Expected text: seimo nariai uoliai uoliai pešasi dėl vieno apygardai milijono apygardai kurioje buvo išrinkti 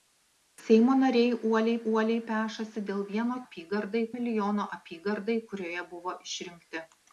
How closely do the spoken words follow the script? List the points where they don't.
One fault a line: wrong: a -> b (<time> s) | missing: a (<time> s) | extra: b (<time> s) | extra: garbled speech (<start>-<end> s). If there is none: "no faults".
no faults